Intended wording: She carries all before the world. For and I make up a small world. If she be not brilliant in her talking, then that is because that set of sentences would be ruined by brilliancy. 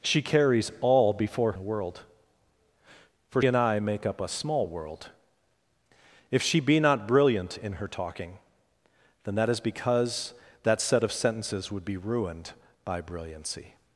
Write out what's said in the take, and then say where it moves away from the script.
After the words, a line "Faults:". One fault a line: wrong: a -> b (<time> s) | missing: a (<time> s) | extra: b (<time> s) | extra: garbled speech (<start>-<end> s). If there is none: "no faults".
She carries all before the world. For and I make up a small world. If she be not brilliant in her talking, then that is because that set of sentences would be ruined by brilliancy.
Faults:
no faults